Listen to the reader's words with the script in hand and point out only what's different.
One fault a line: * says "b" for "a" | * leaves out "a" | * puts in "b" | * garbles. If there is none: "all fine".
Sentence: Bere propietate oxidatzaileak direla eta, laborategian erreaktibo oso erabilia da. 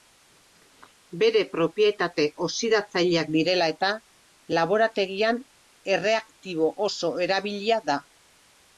all fine